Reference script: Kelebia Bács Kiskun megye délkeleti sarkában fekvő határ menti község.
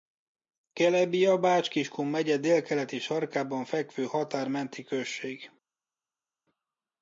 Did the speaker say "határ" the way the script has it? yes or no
yes